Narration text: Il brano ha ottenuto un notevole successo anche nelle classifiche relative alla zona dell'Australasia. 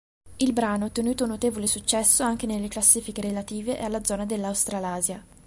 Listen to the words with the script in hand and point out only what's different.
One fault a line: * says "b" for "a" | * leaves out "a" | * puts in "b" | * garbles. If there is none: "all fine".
all fine